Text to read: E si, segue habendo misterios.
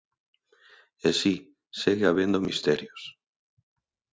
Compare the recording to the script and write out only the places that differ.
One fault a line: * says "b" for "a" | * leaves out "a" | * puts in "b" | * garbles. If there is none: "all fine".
all fine